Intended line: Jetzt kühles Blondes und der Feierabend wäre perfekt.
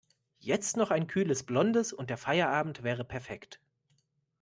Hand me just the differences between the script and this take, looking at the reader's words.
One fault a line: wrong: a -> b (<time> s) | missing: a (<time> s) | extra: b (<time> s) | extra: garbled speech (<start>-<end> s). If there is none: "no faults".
extra: noch ein (0.8 s)